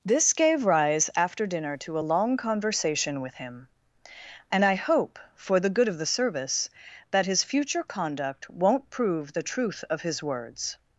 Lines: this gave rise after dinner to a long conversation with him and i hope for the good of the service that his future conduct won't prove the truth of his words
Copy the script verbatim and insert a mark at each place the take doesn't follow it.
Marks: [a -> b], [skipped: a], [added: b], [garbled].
this gave rise after dinner to a long conversation with him and i hope for the good of the service that his future conduct won't prove the truth of his words